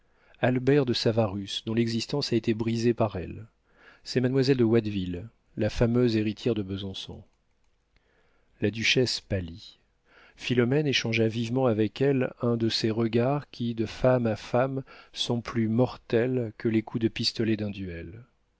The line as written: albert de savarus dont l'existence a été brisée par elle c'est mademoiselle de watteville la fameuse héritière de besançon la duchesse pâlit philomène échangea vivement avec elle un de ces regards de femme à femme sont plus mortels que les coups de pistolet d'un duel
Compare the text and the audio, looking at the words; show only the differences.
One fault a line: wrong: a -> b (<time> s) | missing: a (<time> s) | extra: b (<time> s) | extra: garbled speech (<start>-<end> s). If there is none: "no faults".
extra: qui (13.5 s)